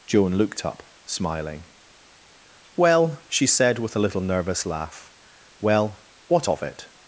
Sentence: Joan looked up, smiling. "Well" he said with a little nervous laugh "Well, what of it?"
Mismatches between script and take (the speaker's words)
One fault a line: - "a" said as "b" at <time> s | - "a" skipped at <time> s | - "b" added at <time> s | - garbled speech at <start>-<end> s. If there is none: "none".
- "he" said as "she" at 3.3 s